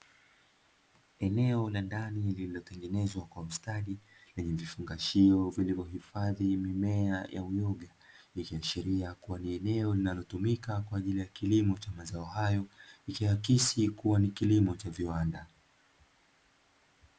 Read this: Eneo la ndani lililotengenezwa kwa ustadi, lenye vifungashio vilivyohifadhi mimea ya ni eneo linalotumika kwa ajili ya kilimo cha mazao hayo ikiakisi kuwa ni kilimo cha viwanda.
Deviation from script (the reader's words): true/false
true